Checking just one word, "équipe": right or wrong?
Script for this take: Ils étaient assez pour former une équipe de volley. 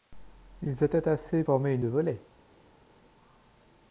wrong